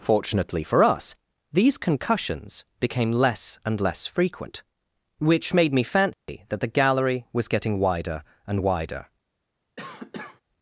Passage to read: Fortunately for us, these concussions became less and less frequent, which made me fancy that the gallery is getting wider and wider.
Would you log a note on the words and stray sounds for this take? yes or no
yes